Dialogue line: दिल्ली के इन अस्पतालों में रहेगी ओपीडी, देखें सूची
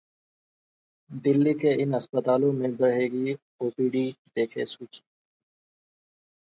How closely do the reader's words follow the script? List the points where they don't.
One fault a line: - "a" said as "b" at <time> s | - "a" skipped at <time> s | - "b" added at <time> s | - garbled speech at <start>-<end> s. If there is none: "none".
none